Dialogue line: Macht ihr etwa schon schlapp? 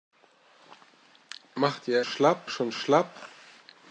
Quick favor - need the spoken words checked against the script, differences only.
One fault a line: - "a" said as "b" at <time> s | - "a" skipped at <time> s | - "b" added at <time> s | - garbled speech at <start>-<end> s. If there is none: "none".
- "etwa" said as "schlapp" at 2.0 s